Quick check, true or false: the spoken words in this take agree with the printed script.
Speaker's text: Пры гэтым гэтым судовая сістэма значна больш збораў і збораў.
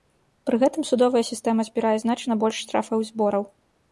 false